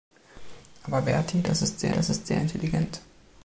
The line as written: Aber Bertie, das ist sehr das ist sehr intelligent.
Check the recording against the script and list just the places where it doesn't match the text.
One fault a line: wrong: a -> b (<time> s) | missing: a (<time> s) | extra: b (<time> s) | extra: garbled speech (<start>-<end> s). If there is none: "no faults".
no faults